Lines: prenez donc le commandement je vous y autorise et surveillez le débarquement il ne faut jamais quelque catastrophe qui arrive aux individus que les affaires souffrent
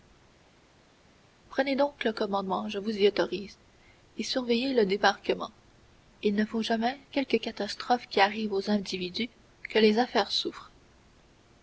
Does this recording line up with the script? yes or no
yes